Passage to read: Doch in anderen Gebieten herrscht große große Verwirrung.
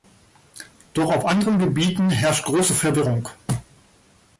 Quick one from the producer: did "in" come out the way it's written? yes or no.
no